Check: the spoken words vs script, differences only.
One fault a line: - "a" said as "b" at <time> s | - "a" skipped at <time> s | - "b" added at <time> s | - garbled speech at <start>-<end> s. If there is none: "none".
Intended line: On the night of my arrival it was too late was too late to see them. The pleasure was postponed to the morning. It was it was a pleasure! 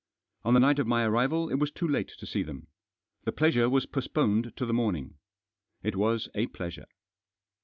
- "was too late" skipped at 2.1 s
- "it was" skipped at 6.3 s